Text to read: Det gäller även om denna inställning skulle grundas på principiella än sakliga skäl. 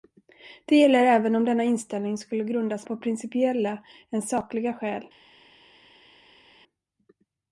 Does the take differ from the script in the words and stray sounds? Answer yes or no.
no